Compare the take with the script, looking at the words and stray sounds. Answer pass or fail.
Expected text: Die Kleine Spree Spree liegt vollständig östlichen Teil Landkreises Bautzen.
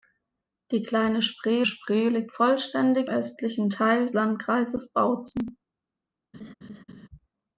fail